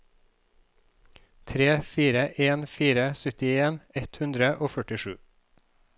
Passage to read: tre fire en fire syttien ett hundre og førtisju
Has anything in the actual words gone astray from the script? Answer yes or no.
no